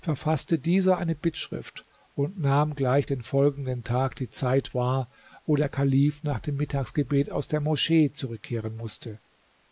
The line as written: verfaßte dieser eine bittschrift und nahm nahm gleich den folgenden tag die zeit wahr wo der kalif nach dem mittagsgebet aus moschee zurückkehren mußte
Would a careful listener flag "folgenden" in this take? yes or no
no